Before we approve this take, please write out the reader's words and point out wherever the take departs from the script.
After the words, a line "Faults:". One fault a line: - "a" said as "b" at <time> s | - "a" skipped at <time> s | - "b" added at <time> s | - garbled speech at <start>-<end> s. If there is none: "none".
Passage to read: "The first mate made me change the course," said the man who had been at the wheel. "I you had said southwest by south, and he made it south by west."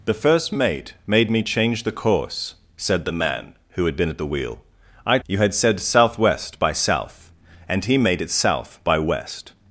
"The first mate made me change the course," said the man who had been at the wheel. "I you had said southwest by south, and he made it south by west."
Faults:
none